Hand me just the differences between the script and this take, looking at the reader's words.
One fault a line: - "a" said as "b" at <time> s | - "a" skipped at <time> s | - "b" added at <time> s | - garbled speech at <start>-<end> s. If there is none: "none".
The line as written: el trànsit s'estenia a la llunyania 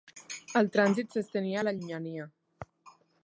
none